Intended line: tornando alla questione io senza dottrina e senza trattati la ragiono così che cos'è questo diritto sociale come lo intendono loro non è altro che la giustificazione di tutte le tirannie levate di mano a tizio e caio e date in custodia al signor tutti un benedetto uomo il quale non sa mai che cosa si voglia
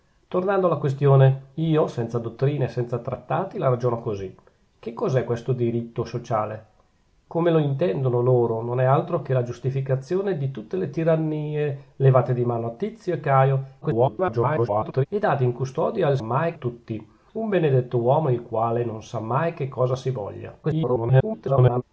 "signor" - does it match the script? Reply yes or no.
no